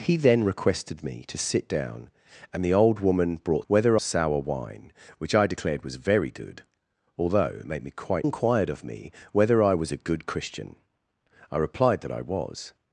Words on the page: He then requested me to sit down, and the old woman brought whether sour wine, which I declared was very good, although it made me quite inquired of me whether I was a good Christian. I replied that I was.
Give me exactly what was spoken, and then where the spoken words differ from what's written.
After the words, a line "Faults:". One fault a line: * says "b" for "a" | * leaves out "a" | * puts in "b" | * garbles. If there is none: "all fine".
He then requested me to sit down, and the old woman brought whether sour wine, which I declared was very good, although it made me quite inquired of me whether I was a good Christian. I replied that I was.
Faults:
all fine